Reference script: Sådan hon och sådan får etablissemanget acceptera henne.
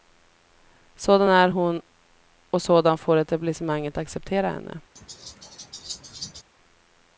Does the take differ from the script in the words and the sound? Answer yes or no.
yes